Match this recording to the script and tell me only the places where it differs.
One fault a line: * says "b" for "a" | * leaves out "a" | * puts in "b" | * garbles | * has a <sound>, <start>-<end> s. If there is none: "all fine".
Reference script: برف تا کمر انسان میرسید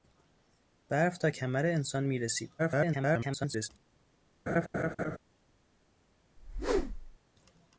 * garbles
* has a laugh, 4.5-5.2 s
* has a whoosh, 6.4-7.2 s